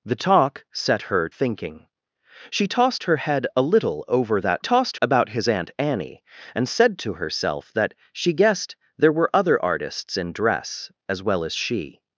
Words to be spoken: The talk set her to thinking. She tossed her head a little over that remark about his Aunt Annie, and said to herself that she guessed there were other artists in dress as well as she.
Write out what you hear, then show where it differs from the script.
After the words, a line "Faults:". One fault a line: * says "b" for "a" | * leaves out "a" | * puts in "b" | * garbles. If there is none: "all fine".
The talk set her thinking. She tossed her head a little over that tossed about his Aunt Annie, and said to herself that she guessed there were other artists in dress as well as she.
Faults:
* leaves out "to"
* says "tossed" for "remark"